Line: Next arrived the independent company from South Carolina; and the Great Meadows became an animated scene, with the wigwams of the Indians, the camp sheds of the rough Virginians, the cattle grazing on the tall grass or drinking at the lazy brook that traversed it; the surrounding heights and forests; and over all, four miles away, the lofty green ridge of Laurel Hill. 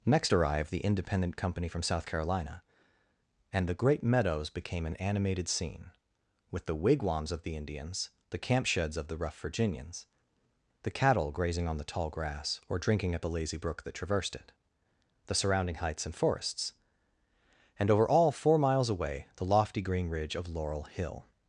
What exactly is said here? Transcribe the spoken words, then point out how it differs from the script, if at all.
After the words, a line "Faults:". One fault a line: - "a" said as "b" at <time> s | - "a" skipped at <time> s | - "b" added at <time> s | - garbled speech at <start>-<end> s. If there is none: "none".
Next arrived the independent company from South Carolina; and the Great Meadows became an animated scene, with the wigwams of the Indians, the camp sheds of the rough Virginians, the cattle grazing on the tall grass or drinking at the lazy brook that traversed it; the surrounding heights and forests; and over all, four miles away, the lofty green ridge of Laurel Hill.
Faults:
none